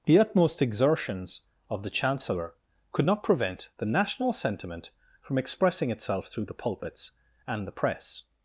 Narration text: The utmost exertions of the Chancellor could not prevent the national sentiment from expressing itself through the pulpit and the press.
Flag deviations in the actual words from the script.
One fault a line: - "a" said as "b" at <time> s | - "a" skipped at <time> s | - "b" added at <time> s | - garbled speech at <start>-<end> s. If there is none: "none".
- "pulpit" said as "pulpits" at 6.5 s